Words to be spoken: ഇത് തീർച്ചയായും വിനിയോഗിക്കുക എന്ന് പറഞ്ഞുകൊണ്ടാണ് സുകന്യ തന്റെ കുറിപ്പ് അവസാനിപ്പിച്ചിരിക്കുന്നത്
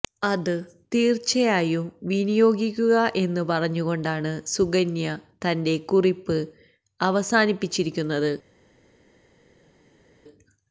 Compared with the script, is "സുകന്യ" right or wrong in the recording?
right